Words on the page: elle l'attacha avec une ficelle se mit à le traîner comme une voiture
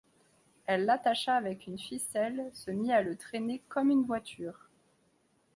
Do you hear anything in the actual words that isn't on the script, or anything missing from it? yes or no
no